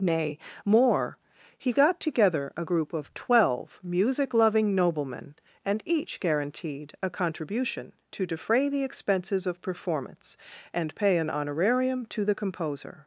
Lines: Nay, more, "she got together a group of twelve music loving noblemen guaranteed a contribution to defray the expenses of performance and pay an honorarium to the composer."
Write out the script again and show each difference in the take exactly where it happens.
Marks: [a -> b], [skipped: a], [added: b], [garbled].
Nay, more, ["she -> he] got together a group of twelve music loving noblemen [added: and each] guaranteed a contribution to defray the expenses of performance and pay an honorarium to the composer."